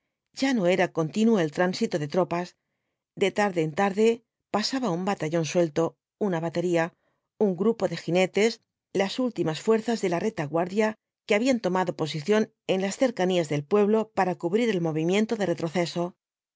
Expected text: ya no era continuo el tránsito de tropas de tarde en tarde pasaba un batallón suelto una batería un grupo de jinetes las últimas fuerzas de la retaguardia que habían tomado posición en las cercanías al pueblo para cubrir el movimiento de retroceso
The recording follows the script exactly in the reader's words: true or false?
false